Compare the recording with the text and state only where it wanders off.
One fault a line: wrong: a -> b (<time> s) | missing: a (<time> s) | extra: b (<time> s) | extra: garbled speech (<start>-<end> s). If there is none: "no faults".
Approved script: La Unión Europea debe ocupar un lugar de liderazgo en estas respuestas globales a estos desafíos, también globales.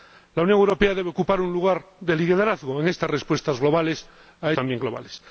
missing: estos desafíos (4.5 s)